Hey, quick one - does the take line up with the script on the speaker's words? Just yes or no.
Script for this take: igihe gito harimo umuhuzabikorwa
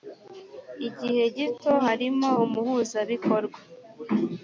yes